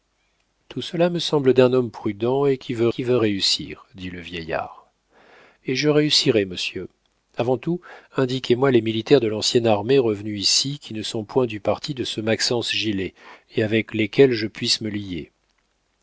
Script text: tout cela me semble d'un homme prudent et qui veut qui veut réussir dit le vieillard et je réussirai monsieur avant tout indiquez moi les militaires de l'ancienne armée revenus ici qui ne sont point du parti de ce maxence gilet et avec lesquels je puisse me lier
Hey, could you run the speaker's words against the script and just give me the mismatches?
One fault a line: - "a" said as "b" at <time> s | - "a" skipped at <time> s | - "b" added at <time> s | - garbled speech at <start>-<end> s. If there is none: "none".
none